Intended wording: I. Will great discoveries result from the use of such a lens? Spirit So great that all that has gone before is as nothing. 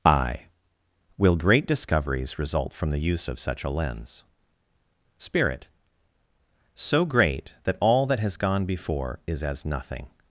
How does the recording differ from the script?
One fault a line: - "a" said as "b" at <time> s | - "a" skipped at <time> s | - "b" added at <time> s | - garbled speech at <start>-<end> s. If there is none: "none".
none